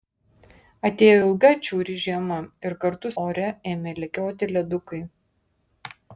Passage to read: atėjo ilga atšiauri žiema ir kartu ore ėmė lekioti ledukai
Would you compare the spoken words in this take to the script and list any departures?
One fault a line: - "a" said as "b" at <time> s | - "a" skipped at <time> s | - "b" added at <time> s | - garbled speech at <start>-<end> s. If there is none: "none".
none